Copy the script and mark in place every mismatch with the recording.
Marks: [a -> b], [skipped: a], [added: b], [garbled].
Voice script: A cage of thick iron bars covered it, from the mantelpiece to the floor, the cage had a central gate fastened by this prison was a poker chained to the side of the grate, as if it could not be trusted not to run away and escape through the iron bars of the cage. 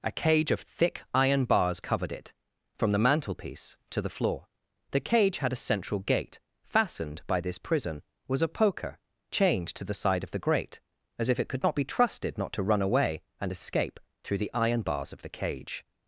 A cage of thick iron bars covered it, from the mantelpiece to the floor, the cage had a central gate fastened by this prison was a poker chained to the side of the grate, as if it could not be trusted not to run away and escape through the iron bars of the cage.